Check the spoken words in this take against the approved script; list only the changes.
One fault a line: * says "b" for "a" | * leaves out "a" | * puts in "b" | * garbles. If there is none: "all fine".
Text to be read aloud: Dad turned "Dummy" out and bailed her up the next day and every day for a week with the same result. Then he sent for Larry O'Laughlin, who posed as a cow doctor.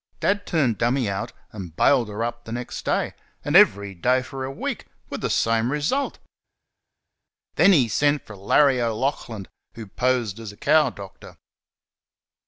all fine